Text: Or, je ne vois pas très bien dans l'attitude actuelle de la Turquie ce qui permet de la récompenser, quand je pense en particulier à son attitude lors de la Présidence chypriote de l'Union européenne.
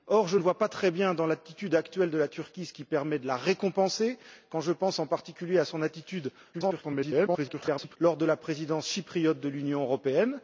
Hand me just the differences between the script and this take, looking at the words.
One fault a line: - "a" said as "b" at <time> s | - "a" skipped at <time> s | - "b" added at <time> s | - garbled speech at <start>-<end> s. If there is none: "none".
- garbled speech at 6.5-8.0 s